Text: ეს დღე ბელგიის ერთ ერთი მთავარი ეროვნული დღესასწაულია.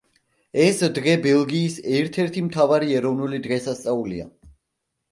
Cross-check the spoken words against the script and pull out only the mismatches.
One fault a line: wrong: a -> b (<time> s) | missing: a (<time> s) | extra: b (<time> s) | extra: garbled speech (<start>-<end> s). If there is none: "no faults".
no faults